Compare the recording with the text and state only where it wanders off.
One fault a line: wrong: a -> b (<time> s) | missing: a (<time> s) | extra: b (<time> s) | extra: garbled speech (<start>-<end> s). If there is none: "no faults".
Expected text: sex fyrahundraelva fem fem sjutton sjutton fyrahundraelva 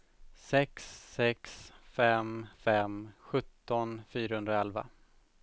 wrong: fyrahundraelva -> sex (1.1 s)
missing: sjutton (4.0 s)